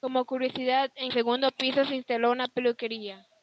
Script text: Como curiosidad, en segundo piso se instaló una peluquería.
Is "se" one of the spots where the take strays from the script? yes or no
no